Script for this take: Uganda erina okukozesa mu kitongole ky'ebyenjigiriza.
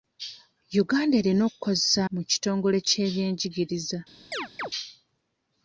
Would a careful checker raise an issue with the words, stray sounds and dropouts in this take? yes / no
yes